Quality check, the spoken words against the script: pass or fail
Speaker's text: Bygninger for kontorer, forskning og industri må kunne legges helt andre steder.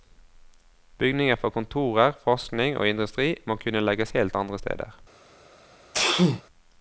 pass